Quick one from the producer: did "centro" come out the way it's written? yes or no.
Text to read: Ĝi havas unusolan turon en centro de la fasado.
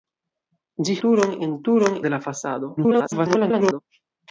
no